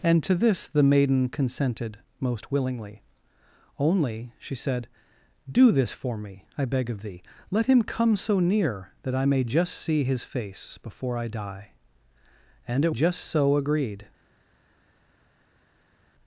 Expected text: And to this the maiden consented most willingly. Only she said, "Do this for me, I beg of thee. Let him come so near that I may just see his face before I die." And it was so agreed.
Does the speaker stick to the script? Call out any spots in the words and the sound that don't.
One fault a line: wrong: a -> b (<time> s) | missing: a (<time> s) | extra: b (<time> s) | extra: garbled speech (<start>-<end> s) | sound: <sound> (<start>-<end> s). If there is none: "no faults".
wrong: was -> just (12.9 s)